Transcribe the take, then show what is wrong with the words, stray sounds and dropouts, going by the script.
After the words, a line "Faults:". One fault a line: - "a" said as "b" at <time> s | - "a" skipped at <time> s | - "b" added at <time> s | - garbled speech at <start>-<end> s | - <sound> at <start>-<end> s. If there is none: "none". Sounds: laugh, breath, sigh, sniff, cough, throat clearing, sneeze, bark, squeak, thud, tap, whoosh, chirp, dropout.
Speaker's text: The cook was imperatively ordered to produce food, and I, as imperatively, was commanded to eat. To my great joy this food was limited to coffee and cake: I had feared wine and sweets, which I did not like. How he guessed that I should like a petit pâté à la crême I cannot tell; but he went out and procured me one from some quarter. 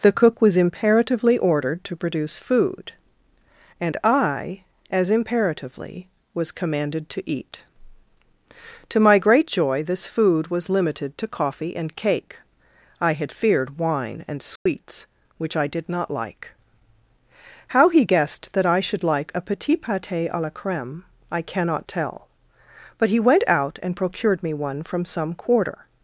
The cook was imperatively ordered to produce food, and I, as imperatively, was commanded to eat. To my great joy this food was limited to coffee and cake: I had feared wine and sweets, which I did not like. How he guessed that I should like a petit pâté à la crême I cannot tell; but he went out and procured me one from some quarter.
Faults:
- dropout at 14.6-14.7 s